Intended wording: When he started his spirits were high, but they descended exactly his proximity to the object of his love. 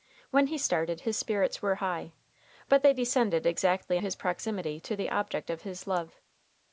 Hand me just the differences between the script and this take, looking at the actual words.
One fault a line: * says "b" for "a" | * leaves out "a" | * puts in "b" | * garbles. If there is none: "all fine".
all fine